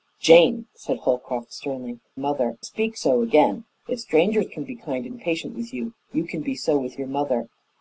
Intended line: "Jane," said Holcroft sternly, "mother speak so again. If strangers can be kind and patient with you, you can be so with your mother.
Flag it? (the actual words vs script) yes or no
no